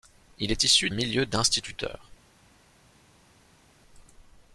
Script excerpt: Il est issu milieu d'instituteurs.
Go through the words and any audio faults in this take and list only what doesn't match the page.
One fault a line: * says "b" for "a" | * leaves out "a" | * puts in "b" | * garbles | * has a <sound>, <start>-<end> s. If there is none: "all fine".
all fine